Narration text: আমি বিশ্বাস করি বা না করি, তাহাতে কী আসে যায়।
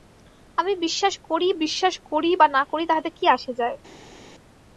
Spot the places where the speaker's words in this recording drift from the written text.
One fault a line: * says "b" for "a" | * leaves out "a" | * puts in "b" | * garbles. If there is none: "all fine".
* puts in "বিশ্বাস করি"